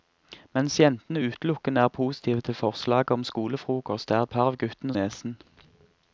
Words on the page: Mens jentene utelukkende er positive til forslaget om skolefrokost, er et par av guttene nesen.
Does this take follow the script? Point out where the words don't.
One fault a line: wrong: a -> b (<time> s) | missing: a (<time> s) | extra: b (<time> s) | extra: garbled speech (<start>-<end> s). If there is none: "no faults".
no faults